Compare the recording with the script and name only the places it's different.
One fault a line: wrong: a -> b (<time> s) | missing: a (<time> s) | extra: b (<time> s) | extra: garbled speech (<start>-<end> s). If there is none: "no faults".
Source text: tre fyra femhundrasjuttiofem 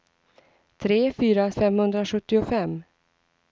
no faults